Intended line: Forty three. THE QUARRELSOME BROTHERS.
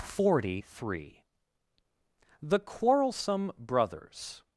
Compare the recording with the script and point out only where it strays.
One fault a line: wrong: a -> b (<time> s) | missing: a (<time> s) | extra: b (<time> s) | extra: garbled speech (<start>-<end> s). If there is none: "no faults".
no faults